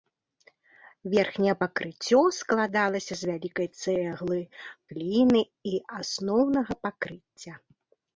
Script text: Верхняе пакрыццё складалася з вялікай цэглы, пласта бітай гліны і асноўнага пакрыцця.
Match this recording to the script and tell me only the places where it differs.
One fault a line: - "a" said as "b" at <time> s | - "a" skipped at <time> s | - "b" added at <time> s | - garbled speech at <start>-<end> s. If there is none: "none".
- "пласта бітай" skipped at 4.4 s